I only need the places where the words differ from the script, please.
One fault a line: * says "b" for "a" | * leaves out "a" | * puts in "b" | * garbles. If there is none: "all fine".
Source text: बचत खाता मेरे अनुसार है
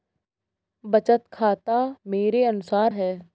all fine